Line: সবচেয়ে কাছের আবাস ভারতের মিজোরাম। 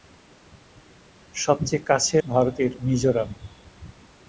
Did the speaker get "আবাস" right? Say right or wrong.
wrong